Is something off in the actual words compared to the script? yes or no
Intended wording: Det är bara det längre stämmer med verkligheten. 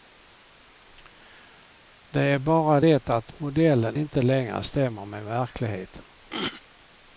yes